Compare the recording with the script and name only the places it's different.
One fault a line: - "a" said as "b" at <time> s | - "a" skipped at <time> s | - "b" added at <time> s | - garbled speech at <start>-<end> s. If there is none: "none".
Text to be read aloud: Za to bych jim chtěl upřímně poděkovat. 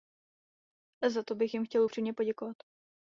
none